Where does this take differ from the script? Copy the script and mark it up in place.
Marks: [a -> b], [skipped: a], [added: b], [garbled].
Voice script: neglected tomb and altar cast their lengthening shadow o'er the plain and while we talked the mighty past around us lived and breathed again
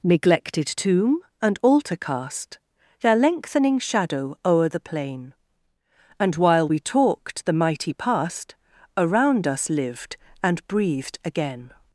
neglected tomb and altar cast their lengthening shadow o'er the plain and while we talked the mighty past around us lived and breathed again